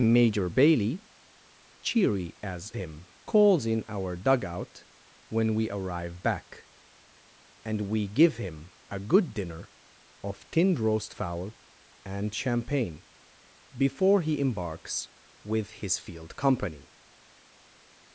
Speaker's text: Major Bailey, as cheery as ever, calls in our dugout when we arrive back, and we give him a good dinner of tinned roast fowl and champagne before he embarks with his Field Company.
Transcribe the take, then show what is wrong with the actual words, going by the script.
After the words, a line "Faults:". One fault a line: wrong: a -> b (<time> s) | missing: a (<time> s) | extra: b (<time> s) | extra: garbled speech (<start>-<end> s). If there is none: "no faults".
Major Bailey, cheery as him, calls in our dugout when we arrive back, and we give him a good dinner of tinned roast fowl and champagne before he embarks with his Field Company.
Faults:
missing: as (1.1 s)
wrong: ever -> him (2.7 s)